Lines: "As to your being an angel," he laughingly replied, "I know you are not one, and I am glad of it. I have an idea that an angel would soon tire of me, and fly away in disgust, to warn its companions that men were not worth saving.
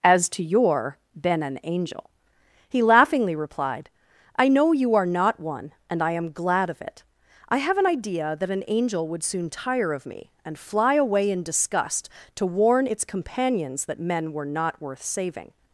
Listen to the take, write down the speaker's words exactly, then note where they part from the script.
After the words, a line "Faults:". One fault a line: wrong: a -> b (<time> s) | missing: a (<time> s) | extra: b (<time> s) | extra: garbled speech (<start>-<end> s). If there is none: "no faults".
"As to your been an angel," he laughingly replied, "I know you are not one, and I am glad of it. I have an idea that an angel would soon tire of me, and fly away in disgust, to warn its companions that men were not worth saving.
Faults:
wrong: being -> been (1.2 s)